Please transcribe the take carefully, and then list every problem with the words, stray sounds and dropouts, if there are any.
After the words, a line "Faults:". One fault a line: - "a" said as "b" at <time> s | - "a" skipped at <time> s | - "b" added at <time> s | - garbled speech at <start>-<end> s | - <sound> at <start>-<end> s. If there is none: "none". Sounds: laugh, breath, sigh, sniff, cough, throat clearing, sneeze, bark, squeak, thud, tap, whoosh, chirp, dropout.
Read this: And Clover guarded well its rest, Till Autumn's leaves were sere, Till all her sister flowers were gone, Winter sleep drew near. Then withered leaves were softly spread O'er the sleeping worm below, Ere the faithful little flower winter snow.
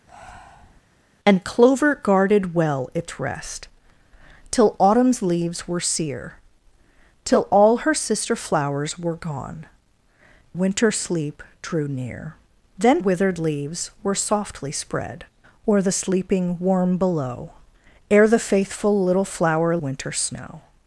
And Clover guarded well its rest, Till Autumn's leaves were sere, Till all her sister flowers were gone, Winter sleep drew near. Then withered leaves were softly spread O'er the sleeping worm below, Ere the faithful little flower winter snow.
Faults:
- breath at 0.1-0.8 s